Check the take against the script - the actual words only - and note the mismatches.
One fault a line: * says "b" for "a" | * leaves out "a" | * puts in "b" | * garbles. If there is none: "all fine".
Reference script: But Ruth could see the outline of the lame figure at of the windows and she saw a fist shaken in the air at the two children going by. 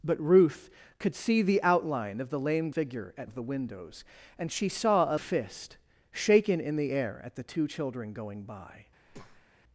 all fine